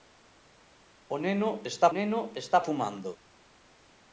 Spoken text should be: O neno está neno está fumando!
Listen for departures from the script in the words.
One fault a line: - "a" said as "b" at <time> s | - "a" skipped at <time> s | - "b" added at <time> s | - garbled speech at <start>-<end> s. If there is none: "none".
none